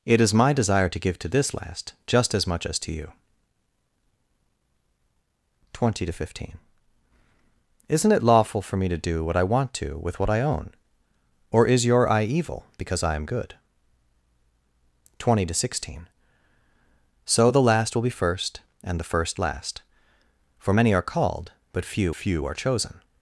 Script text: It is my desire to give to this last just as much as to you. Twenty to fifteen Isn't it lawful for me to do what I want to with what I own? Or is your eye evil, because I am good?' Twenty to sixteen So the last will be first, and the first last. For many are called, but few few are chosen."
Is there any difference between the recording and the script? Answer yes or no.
no